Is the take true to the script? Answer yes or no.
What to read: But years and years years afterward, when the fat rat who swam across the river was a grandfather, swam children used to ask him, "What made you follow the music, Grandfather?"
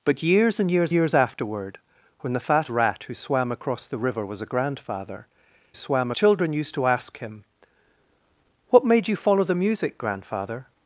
yes